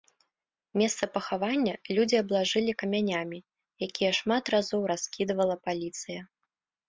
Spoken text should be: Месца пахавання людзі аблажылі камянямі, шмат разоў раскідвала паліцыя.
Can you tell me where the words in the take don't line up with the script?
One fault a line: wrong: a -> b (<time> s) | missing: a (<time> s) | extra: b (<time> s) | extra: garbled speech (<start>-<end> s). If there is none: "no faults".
extra: якія (3.9 s)